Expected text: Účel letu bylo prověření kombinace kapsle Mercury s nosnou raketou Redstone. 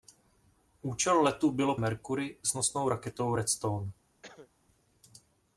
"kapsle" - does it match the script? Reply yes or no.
no